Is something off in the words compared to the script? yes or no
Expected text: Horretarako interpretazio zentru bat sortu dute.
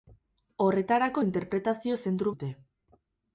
yes